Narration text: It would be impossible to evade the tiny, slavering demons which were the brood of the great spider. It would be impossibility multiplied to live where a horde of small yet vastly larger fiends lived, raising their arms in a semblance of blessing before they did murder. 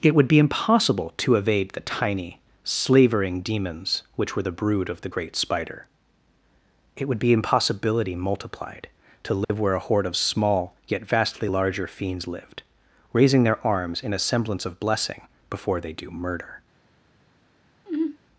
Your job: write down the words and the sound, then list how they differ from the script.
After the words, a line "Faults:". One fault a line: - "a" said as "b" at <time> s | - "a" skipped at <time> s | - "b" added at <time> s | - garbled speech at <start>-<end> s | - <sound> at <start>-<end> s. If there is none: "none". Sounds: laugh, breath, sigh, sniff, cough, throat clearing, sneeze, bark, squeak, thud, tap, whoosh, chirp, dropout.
It would be impossible to evade the tiny, slavering demons which were the brood of the great spider. It would be impossibility multiplied to live where a horde of small yet vastly larger fiends lived, raising their arms in a semblance of blessing before they do murder.
Faults:
- dropout at 9.4-9.5 s
- "did" said as "do" at 15.9 s
- sigh at 17.9-18.2 s